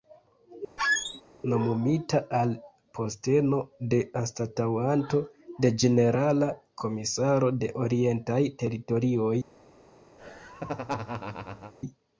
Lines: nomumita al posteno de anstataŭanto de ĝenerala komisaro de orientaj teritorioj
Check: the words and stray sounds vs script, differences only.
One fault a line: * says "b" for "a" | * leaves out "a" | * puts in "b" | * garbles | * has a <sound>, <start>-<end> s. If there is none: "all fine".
* has a squeak, 0.8-1.2 s
* has a laugh, 10.2-11.7 s